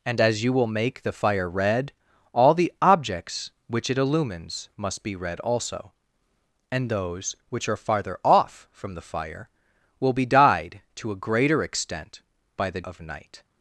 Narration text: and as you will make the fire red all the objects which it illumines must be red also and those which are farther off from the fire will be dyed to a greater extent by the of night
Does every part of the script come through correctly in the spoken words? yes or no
yes